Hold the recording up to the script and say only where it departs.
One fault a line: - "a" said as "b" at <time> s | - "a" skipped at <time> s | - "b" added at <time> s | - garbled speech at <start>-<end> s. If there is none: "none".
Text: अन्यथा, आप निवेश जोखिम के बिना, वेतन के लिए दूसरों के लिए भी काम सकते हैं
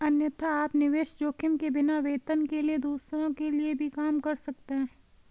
- "कर" added at 4.2 s